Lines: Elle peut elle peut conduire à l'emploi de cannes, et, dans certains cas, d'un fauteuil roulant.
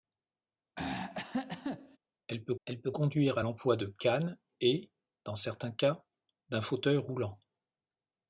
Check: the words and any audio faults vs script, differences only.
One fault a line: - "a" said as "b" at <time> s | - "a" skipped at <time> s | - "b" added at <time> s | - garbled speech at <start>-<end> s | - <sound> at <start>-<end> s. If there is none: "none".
- throat clearing at 0.8-2.0 s